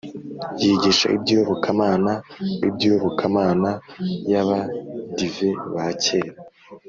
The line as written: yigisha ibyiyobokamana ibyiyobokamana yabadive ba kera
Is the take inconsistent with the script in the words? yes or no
no